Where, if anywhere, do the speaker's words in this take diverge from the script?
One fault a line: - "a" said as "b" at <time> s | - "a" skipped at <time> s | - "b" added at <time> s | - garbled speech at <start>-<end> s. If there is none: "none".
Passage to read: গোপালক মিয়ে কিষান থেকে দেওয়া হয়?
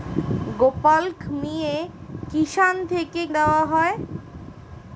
none